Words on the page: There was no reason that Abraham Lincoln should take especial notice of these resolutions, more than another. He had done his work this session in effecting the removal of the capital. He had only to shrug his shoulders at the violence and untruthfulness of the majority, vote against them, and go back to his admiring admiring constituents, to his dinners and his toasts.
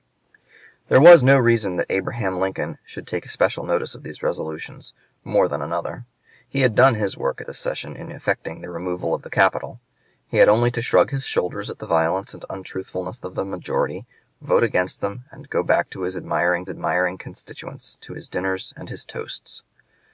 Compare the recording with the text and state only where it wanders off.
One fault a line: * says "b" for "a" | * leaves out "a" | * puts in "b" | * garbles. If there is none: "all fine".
all fine